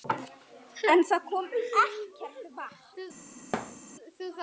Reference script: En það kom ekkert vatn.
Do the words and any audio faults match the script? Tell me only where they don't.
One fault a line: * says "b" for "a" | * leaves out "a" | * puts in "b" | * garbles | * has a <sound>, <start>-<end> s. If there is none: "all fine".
* has a thud, 3.5-3.8 s